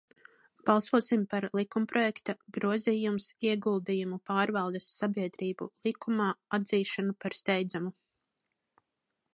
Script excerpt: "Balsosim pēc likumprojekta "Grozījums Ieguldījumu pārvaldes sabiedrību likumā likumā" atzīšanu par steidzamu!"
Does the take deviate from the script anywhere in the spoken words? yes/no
yes